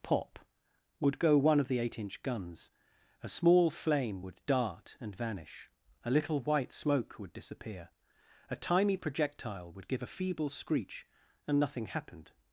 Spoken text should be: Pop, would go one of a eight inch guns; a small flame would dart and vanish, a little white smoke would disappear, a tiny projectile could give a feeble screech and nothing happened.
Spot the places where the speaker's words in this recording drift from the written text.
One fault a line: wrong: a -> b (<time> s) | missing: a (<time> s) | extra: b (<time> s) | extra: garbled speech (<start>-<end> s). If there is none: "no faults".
wrong: a -> the (1.7 s)
wrong: could -> would (9.7 s)